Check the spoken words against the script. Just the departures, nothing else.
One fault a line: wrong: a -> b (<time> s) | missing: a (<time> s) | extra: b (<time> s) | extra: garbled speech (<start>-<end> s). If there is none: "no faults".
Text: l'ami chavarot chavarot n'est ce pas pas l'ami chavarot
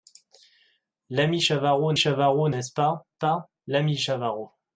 no faults